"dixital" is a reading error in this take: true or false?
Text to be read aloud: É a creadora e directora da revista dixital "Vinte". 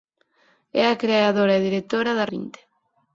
true